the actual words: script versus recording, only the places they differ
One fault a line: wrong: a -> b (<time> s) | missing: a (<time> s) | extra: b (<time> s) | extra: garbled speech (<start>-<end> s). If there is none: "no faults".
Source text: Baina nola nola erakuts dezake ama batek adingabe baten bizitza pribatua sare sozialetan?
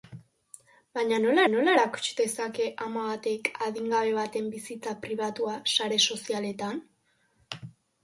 no faults